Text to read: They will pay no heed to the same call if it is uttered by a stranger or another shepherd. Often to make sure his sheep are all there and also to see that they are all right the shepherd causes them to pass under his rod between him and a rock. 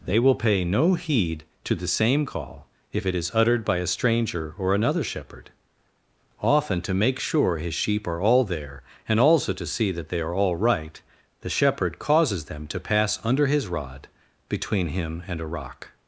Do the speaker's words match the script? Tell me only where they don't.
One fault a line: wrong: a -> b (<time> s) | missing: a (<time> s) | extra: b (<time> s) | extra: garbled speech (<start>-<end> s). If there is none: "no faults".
no faults